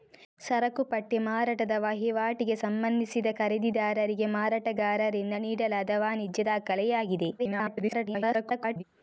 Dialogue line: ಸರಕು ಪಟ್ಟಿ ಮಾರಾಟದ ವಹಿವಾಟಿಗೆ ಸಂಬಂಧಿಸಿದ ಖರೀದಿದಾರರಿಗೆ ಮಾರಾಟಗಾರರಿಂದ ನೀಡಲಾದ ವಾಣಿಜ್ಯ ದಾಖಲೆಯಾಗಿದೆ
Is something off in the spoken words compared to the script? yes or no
yes